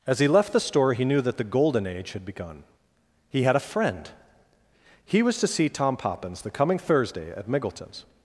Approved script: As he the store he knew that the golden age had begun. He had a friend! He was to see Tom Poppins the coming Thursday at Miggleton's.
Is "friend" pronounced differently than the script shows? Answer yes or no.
no